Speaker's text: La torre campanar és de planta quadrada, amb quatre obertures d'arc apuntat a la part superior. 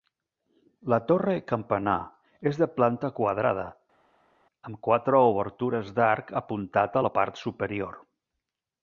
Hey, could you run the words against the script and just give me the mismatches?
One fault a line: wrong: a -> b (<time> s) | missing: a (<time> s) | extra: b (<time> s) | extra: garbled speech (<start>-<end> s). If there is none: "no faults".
no faults